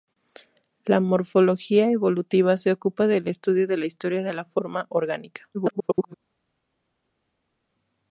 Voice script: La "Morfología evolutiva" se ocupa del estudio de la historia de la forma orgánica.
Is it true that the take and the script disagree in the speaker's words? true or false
true